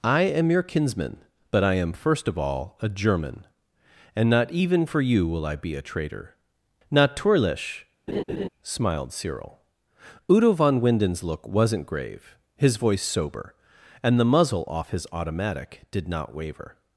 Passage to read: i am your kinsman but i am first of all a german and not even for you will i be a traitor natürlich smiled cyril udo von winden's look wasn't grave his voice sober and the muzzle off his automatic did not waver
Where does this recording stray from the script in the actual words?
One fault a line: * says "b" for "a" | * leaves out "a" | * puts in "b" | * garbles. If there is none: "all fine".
all fine